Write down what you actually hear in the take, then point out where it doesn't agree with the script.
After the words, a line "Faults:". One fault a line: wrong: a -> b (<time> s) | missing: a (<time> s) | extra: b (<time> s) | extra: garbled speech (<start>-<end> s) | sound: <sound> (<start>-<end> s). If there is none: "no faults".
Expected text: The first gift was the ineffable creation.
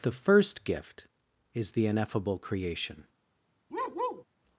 The first gift is the ineffable creation.
Faults:
wrong: was -> is (1.5 s)
sound: bark (3.7-4.2 s)